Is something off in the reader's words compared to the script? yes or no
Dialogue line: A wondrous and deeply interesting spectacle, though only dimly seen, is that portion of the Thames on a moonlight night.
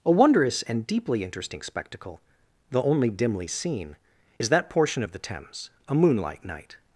yes